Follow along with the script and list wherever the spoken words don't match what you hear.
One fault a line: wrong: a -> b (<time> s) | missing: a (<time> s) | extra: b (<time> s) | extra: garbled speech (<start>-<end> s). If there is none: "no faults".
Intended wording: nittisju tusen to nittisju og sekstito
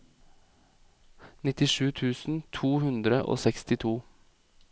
wrong: nittisju -> hundre (2.9 s)